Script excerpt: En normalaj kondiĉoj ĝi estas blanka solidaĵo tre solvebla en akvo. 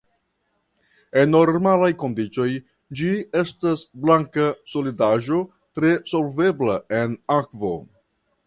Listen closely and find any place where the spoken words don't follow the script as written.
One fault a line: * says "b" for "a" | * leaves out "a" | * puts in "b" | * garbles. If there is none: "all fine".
all fine